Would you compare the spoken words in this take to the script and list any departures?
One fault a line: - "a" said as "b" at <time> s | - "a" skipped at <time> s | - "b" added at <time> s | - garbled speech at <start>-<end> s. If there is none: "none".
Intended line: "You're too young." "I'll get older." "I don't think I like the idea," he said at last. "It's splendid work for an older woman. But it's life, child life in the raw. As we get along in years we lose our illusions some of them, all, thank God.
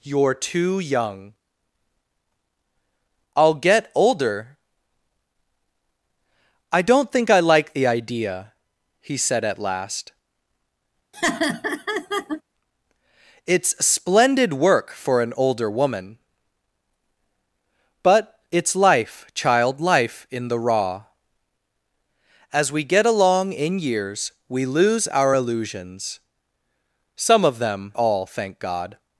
none